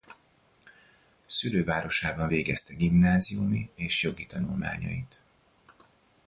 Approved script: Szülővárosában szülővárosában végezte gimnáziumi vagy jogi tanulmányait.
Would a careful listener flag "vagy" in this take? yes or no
yes